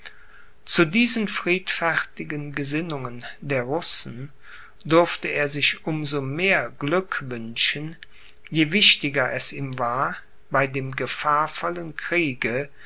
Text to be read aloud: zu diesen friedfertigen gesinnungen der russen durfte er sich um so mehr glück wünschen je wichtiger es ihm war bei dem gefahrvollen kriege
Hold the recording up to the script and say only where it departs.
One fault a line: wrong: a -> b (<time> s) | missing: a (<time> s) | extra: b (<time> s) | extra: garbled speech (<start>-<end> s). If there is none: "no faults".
no faults